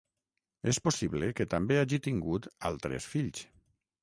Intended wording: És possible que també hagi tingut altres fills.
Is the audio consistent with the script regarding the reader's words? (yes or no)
yes